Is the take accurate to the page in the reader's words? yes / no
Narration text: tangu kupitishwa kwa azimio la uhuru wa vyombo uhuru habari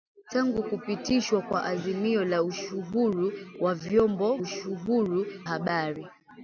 yes